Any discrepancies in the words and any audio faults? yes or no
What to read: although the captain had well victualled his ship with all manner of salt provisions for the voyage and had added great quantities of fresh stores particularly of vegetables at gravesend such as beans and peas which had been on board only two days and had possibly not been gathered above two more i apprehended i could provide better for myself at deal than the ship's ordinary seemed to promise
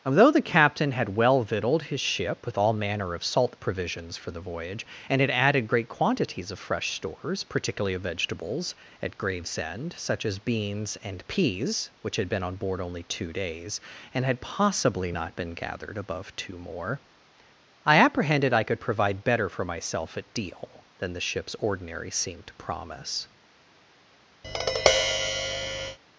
yes